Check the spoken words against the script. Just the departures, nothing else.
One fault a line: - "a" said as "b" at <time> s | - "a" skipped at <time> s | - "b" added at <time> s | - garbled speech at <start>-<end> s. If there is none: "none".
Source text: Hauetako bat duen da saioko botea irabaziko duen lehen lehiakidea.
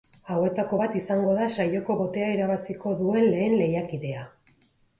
- "duen" said as "izango" at 1.0 s